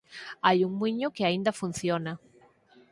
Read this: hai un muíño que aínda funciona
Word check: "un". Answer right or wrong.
right